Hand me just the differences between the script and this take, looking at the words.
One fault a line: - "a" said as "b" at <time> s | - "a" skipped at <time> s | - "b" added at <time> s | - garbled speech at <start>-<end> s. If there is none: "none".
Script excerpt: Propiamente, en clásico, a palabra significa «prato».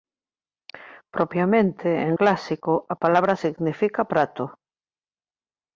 none